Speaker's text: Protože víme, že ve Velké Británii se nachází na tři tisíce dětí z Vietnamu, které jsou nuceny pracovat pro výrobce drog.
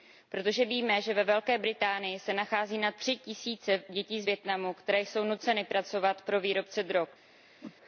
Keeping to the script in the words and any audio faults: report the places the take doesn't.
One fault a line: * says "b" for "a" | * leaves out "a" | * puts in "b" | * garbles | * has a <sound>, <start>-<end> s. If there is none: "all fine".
* has a whoosh, 7.6-7.8 s